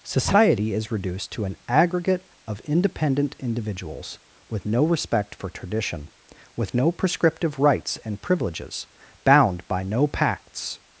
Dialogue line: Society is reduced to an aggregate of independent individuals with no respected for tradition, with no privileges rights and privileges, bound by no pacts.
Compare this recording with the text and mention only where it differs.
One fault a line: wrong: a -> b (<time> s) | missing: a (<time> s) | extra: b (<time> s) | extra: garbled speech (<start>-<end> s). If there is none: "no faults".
wrong: respected -> respect (4.8 s)
wrong: privileges -> prescriptive (6.9 s)